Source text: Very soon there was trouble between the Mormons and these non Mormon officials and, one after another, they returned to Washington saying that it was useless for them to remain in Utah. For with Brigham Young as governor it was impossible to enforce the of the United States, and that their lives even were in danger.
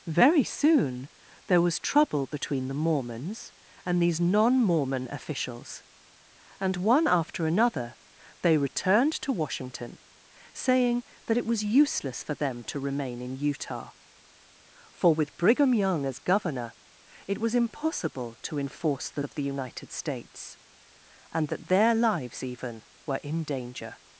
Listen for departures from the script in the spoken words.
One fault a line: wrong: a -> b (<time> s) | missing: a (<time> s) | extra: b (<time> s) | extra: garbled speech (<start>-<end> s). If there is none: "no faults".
no faults